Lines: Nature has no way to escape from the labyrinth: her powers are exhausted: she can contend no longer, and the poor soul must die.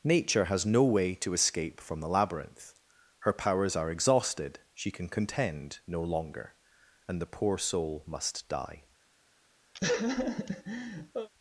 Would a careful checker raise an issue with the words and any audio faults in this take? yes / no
yes